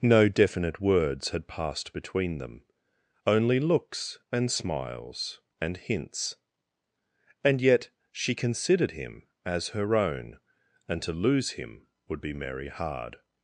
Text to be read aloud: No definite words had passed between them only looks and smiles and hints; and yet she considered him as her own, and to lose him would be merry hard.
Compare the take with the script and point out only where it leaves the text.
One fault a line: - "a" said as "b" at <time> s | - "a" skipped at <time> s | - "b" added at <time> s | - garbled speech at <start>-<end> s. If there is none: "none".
none